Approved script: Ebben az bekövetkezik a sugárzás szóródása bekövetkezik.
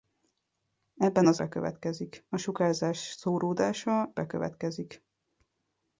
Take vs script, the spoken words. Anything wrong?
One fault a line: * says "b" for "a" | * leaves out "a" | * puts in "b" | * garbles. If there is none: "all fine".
all fine